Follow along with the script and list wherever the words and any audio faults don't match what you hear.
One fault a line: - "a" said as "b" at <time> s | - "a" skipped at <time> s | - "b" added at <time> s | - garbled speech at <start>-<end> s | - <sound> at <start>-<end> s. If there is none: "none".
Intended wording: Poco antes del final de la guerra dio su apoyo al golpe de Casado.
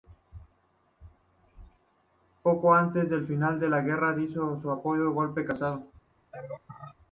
- laugh at 6.3-7.0 s